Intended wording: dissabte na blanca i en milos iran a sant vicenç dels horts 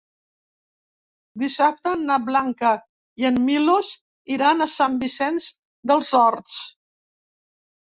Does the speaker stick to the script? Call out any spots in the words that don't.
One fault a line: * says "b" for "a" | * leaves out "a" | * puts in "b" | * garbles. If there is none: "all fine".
all fine